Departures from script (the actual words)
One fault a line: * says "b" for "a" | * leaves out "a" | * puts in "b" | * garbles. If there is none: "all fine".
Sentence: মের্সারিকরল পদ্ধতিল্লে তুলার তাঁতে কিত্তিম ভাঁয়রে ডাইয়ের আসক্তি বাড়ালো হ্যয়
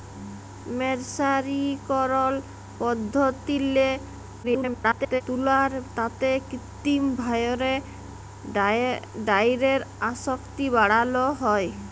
* garbles